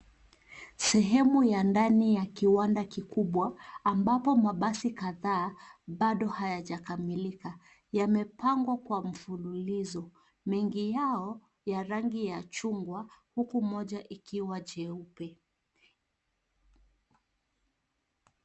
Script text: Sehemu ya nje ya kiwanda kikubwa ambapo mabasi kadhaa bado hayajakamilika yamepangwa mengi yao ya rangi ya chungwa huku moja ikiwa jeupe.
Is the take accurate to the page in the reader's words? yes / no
no